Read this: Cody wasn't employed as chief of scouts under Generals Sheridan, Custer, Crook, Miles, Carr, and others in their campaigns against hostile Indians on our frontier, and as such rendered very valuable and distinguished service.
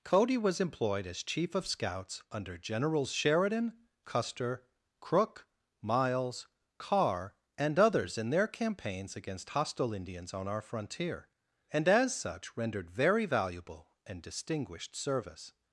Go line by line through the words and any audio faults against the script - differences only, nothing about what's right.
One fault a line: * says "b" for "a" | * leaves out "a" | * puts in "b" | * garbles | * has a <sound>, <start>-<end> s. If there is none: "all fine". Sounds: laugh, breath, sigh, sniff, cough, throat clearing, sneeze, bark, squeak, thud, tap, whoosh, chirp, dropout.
* says "was" for "wasn't"